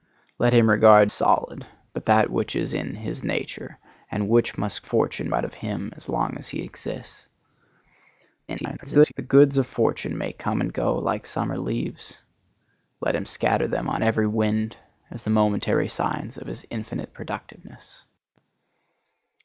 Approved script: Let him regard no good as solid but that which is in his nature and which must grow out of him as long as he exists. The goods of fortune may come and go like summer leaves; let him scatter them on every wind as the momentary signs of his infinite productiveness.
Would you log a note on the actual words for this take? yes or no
yes